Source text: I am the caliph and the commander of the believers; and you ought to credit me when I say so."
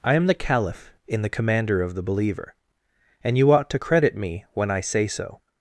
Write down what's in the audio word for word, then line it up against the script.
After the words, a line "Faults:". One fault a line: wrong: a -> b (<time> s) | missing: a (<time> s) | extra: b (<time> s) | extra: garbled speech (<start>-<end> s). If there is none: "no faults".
I am the caliph in the commander of the believer; and you ought to credit me when I say so."
Faults:
wrong: and -> in (1.1 s)
wrong: believers -> believer (2.0 s)